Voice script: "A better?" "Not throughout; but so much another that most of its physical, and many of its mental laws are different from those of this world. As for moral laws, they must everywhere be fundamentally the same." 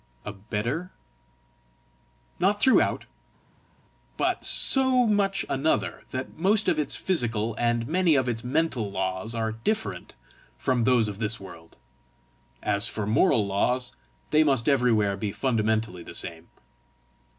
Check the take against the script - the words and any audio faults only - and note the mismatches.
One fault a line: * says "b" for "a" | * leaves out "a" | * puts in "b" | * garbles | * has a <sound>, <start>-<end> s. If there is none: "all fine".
all fine